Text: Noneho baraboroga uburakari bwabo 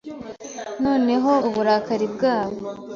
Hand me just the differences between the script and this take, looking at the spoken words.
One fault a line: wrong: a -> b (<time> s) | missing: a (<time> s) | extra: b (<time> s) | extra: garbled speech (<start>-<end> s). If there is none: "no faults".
missing: baraboroga (1.3 s)